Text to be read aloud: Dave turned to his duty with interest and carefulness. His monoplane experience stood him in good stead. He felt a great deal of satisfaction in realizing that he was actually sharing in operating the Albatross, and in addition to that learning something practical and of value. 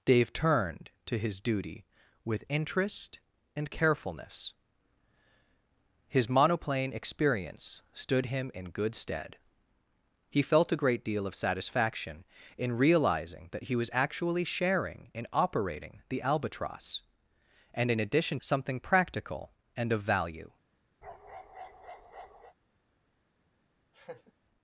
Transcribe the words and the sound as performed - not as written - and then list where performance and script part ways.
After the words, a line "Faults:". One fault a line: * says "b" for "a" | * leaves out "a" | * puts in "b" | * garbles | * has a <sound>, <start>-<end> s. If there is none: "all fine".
Dave turned to his duty with interest and carefulness. His monoplane experience stood him in good stead. He felt a great deal of satisfaction in realizing that he was actually sharing in operating the Albatross, and in addition something practical and of value.
Faults:
* leaves out "to that learning"
* has a bark, 21.0-22.5 s
* has a laugh, 23.9-24.3 s